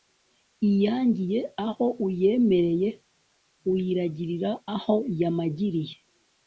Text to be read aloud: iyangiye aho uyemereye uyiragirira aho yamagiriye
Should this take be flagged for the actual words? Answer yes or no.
no